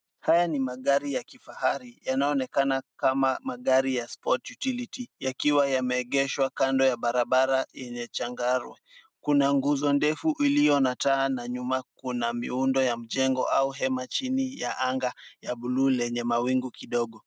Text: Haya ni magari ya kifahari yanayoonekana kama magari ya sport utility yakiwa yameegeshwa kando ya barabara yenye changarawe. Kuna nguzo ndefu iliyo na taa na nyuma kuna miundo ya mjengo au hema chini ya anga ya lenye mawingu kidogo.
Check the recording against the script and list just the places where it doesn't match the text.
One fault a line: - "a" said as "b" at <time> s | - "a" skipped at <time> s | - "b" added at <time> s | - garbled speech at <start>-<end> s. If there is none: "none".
- "bluu" added at 15.6 s